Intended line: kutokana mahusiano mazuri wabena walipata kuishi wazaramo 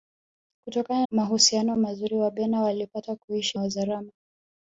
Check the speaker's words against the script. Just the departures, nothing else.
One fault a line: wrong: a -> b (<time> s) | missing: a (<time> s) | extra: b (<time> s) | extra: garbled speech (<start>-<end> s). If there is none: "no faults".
no faults